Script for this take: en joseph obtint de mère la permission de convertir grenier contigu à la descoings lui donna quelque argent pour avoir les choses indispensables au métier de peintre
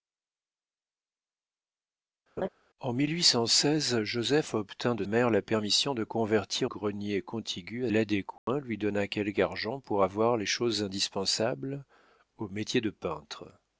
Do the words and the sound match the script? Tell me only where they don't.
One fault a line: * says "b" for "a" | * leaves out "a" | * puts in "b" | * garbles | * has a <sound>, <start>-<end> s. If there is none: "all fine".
* has a laugh, 2.4-2.5 s
* has a dropout, 8.4-8.5 s